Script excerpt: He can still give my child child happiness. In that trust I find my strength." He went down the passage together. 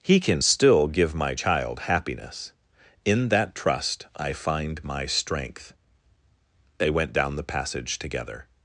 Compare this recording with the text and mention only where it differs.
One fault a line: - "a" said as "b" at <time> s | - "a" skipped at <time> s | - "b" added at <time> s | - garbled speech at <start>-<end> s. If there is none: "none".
- "child" skipped at 1.8 s
- "He" said as "They" at 6.8 s